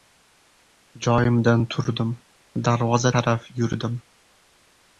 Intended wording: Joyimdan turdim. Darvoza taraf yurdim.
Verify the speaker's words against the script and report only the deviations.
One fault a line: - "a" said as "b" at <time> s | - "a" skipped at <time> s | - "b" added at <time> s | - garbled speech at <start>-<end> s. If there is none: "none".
none